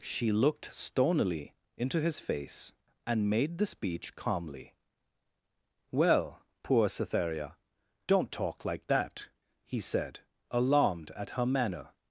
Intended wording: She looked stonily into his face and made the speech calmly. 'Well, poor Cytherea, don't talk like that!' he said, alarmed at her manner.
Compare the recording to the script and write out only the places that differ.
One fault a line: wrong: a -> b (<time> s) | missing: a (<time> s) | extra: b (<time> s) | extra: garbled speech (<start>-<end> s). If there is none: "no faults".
no faults